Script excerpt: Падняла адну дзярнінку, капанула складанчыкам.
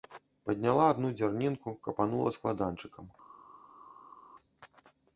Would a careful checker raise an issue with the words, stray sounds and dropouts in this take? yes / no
no